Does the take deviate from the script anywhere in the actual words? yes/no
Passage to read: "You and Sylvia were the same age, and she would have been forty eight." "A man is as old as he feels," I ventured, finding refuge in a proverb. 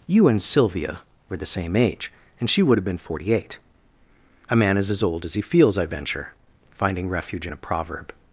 yes